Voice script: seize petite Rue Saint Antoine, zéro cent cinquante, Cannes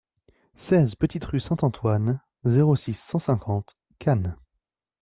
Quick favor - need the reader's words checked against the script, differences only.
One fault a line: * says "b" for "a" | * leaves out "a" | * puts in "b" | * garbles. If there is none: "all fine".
* puts in "six"